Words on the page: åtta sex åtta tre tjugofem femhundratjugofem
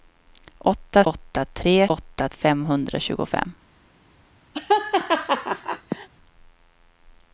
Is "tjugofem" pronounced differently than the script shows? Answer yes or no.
yes